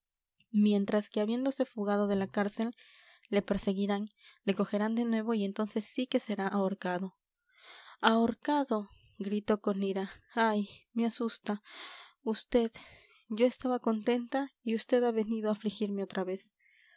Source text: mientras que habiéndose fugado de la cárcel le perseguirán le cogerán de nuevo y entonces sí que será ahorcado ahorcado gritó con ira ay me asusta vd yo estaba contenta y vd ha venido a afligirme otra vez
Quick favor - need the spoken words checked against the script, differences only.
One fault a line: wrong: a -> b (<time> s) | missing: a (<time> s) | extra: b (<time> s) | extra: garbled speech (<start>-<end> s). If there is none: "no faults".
no faults